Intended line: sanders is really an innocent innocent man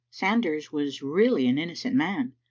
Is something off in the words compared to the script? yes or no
yes